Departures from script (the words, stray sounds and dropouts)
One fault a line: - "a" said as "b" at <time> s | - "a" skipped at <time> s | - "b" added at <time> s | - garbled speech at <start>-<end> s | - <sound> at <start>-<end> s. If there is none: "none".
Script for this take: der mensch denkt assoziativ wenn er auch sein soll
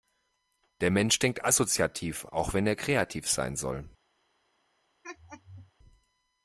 - "auch" added at 2.2 s
- "auch" said as "kreativ" at 2.8 s
- laugh at 5.0-5.7 s